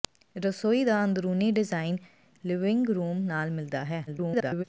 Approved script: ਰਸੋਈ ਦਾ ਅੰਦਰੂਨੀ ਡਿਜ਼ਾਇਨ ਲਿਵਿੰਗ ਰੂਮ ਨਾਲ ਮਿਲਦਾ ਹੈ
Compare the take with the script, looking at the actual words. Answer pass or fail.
fail